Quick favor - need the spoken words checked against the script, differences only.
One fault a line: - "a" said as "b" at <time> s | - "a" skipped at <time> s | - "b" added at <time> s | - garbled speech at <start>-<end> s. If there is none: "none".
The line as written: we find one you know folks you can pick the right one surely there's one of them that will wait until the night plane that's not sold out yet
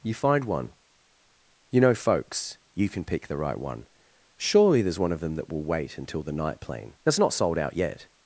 - "we" said as "you" at 0.0 s